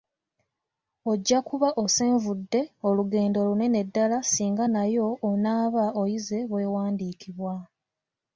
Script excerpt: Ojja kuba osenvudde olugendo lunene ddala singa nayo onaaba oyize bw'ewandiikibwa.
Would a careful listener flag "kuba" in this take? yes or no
no